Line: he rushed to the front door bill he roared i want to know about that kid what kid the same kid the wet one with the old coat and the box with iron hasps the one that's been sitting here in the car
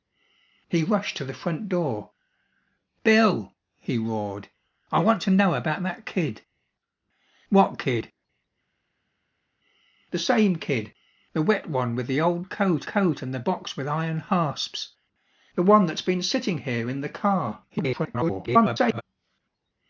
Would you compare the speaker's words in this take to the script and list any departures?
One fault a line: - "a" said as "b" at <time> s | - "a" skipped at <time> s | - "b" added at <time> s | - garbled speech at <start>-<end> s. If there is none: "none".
- "coat" added at 12.9 s
- garbled speech at 17.7-19.0 s